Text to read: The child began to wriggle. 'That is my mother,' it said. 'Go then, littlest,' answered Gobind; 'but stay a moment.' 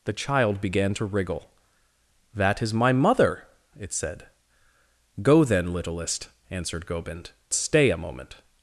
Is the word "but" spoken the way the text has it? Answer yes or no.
no